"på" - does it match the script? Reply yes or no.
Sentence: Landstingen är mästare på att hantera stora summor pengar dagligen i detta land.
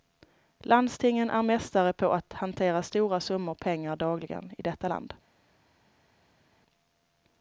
yes